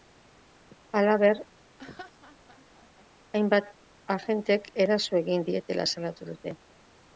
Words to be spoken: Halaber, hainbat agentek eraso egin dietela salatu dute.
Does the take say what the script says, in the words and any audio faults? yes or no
no